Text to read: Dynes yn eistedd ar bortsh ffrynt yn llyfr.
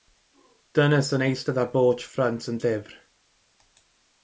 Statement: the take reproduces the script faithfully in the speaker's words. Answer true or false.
true